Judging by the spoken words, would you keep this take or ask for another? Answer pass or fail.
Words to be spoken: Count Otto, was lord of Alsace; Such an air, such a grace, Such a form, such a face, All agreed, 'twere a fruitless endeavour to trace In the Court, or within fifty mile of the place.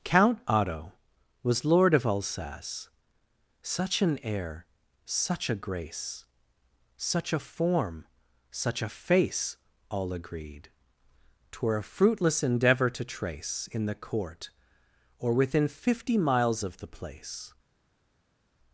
fail